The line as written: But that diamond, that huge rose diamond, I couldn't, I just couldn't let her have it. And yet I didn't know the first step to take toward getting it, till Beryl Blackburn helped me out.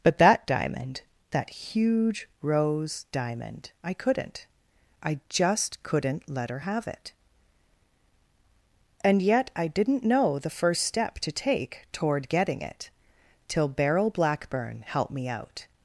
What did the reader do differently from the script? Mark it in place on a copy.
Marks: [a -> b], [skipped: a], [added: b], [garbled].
But that diamond, that huge rose diamond, I couldn't, I just couldn't let her have it. And yet I didn't know the first step to take toward getting it, till Beryl Blackburn helped me out.